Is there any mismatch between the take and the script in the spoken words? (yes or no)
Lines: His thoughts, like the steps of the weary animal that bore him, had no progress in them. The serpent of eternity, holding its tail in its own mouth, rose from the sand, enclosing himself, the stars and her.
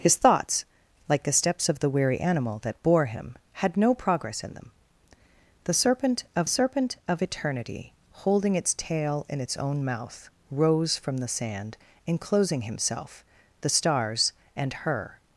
yes